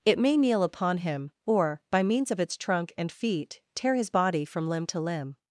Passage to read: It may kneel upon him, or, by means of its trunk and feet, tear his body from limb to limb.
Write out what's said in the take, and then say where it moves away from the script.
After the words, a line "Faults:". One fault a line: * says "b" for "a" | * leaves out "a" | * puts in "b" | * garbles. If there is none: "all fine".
It may kneel upon him, or, by means of its trunk and feet, tear his body from limb to limb.
Faults:
all fine